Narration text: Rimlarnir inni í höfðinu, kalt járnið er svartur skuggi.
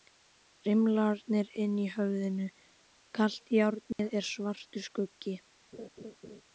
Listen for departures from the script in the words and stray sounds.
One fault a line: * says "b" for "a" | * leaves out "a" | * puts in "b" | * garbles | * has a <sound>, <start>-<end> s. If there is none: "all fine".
* has a dropout, 3.9-4.0 s
* has a laugh, 5.7-6.4 s